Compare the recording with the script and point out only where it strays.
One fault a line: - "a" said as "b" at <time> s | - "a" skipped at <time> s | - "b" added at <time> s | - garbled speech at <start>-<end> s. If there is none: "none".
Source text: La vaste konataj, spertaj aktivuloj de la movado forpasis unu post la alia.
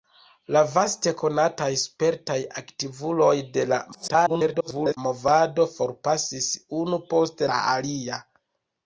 - garbled speech at 3.9-5.0 s